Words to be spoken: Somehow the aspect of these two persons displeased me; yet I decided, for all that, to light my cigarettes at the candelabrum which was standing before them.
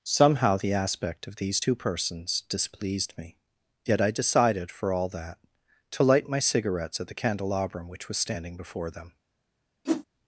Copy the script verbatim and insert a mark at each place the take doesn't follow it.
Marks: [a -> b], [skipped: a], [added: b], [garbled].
Somehow the aspect of these two persons displeased me; yet I decided, for all that, to light my cigarettes at the candelabrum which was standing before them.